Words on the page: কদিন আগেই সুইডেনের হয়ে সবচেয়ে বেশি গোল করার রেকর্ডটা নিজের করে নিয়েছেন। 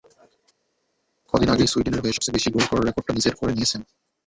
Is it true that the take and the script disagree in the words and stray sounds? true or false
false